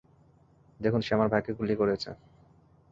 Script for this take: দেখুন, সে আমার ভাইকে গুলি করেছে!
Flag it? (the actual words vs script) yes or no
no